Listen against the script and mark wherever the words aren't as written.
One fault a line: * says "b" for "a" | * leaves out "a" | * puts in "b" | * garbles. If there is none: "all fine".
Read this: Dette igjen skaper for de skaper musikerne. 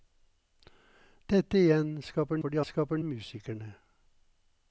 all fine